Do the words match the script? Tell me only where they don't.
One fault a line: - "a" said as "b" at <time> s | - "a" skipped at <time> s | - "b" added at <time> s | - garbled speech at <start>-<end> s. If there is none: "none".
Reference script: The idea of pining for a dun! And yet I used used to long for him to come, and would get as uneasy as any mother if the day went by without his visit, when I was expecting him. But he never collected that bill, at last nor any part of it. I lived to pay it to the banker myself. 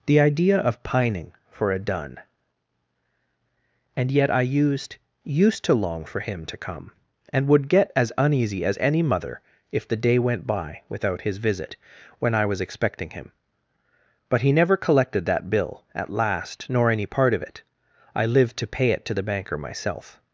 none